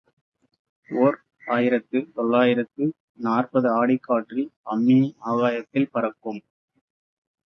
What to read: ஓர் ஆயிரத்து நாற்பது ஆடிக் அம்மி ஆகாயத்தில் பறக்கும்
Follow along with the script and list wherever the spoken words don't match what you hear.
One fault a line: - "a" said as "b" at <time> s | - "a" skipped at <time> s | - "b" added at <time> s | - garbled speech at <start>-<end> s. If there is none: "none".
- "தொள்ளாயிரத்து" added at 2.1 s
- "காற்றில்" added at 4.0 s